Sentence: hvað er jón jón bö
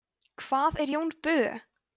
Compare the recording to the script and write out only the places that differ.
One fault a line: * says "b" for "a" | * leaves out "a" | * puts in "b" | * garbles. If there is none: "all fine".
* leaves out "jón"